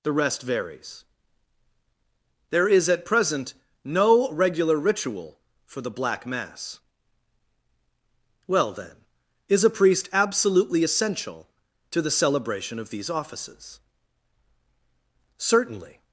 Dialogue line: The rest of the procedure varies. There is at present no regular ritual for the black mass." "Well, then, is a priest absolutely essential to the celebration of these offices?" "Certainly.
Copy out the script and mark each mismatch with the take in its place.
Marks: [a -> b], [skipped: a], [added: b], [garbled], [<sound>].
The rest [skipped: of the procedure] varies. There is at present no regular ritual for the black mass." "Well, then, is a priest absolutely essential to the celebration of these offices?" "Certainly.